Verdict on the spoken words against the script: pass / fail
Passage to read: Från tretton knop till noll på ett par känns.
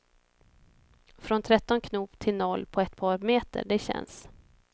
fail